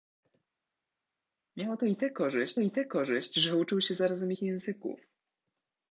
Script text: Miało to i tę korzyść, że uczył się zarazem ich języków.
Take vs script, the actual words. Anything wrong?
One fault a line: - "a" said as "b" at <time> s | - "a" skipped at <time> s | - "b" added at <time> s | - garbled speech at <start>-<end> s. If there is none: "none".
- "i tę korzyść" added at 2.6 s